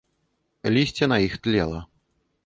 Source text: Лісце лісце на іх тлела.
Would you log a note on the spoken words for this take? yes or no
yes